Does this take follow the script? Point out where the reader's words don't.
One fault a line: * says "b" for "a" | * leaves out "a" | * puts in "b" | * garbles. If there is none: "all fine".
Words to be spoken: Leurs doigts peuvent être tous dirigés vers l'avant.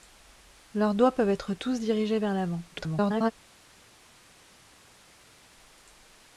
* garbles